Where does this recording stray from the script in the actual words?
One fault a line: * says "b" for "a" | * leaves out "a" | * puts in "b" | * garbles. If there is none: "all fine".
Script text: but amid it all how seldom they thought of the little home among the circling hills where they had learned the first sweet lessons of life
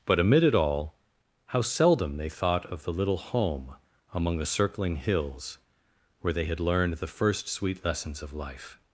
all fine